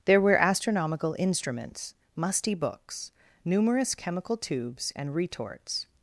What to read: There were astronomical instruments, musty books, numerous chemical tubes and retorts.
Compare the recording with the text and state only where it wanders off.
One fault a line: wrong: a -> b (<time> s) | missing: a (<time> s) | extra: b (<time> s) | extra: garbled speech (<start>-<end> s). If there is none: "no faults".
no faults